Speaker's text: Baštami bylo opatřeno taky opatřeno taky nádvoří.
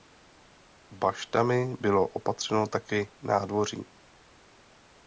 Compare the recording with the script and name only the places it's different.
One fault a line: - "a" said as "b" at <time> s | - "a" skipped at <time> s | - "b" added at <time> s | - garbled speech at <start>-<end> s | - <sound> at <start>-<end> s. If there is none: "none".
- "opatřeno taky" skipped at 3.1 s